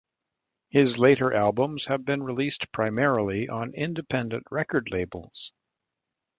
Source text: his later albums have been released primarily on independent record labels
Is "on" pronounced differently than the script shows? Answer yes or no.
no